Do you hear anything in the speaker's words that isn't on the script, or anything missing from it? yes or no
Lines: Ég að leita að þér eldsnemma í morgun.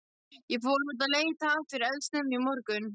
yes